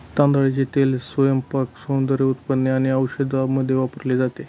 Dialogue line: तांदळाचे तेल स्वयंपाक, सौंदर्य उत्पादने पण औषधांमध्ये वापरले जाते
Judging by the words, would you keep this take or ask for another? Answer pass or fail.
fail